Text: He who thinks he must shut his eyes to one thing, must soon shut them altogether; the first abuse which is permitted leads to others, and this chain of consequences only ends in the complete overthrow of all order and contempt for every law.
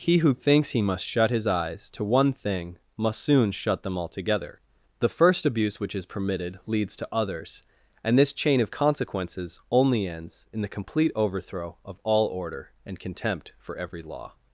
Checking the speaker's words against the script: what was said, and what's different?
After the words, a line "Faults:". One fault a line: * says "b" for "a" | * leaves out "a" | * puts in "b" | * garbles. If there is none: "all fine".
He who thinks he must shut his eyes to one thing, must soon shut them altogether; the first abuse which is permitted leads to others, and this chain of consequences only ends in the complete overthrow of all order and contempt for every law.
Faults:
all fine